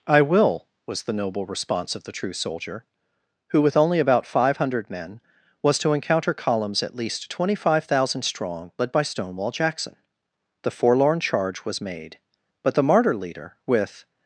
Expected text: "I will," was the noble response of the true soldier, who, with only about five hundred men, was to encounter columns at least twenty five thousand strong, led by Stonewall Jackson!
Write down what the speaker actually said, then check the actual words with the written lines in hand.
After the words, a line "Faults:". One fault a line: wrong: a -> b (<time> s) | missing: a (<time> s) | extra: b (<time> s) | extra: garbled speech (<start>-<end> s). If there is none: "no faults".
"I will," was the noble response of the true soldier, who, with only about five hundred men, was to encounter columns at least twenty five thousand strong, led by Stonewall Jackson! The forlorn charge was made, but the martyr leader, with
Faults:
extra: The forlorn charge was made but the martyr leader with (10.6 s)